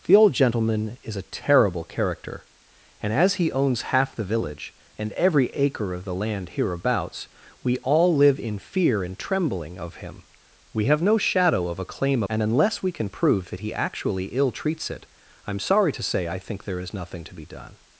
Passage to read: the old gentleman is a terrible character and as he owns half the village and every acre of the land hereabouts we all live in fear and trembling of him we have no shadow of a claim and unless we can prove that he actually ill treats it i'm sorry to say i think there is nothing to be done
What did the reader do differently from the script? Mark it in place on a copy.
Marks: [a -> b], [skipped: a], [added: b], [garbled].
the old gentleman is a terrible character and as he owns half the village and every acre of the land hereabouts we all live in fear and trembling of him we have no shadow of a claim and unless we can prove that he actually ill treats it i'm sorry to say i think there is nothing to be done